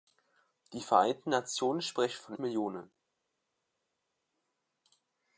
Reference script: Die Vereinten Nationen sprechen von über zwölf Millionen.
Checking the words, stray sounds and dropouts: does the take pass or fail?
fail